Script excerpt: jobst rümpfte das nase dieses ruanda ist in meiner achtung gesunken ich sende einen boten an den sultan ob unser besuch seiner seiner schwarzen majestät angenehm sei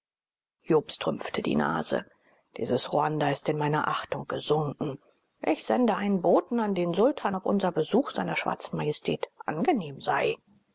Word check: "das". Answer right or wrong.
wrong